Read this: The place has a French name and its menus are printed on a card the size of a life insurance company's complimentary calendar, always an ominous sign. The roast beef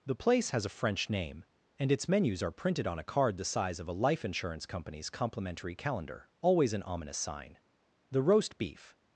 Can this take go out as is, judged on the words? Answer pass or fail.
pass